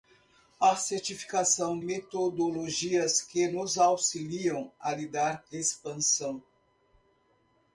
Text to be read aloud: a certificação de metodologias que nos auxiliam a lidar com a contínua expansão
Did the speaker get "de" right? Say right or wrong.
wrong